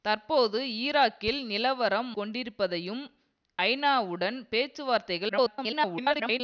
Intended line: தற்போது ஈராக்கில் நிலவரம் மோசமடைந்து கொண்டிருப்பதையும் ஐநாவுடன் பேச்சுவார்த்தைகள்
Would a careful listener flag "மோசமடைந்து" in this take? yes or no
yes